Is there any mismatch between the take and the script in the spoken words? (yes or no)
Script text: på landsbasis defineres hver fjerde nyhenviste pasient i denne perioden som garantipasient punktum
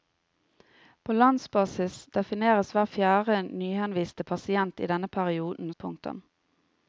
yes